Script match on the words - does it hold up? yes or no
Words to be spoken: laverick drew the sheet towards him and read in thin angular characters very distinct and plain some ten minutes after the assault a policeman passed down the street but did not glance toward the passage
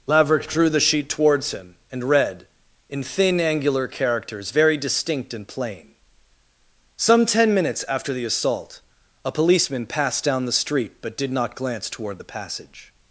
yes